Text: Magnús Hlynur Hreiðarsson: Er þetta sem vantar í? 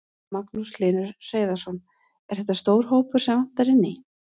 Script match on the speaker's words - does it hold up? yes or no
no